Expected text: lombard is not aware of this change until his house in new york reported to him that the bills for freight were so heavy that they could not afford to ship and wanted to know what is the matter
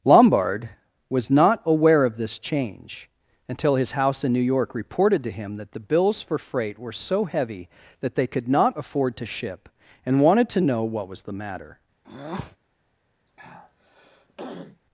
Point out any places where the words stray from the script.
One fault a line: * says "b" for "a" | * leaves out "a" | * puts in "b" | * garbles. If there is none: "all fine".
* says "was" for "is"
* says "was" for "is"